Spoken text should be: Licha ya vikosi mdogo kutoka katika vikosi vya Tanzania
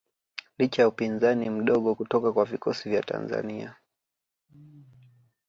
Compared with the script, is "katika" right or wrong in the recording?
wrong